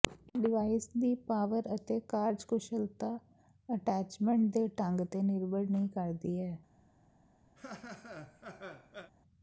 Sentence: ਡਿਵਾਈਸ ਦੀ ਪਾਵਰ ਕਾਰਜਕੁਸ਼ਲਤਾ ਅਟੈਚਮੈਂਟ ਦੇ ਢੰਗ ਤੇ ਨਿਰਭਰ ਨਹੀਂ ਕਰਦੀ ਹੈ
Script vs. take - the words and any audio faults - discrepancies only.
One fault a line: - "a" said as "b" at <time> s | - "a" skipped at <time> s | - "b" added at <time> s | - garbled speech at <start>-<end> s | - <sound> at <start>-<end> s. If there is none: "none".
- "ਅਤੇ" added at 1.7 s
- laugh at 7.6-9.1 s